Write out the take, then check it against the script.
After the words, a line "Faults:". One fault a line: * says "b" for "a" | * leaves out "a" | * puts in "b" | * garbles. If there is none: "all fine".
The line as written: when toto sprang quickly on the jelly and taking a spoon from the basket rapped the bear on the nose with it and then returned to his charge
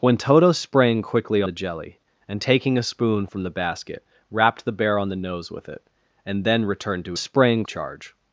when toto sprang quickly the jelly and taking a spoon from the basket rapped the bear on the nose with it and then returned to sprang charge
Faults:
* leaves out "on"
* says "sprang" for "his"